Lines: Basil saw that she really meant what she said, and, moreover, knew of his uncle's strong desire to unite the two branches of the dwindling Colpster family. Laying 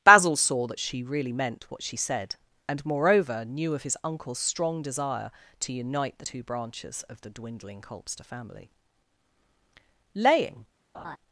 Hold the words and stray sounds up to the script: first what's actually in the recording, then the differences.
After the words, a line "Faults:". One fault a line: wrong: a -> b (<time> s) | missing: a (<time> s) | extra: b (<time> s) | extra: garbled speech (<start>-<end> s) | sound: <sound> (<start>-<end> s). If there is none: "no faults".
Basil saw that she really meant what she said, and, moreover, knew of his uncle's strong desire to unite the two branches of the dwindling Colpster family. Laying
Faults:
sound: laugh (10.9-11.2 s)